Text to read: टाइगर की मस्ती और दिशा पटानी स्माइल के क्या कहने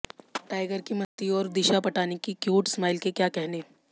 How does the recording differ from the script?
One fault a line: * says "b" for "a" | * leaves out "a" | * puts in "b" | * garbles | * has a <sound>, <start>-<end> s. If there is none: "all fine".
* has a dropout, 1.0-1.2 s
* puts in "की क्यूट"